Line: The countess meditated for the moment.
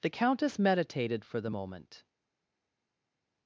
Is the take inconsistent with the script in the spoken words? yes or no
no